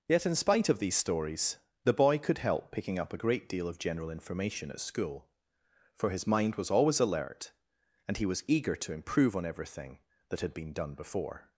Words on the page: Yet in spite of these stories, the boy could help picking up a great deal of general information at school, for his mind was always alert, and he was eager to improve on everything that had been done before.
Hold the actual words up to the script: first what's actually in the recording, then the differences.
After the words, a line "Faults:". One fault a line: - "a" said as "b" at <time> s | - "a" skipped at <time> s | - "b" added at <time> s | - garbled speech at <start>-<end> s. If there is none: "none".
Yet in spite of these stories, the boy could help picking up a great deal of general information at school, for his mind was always alert, and he was eager to improve on everything that had been done before.
Faults:
none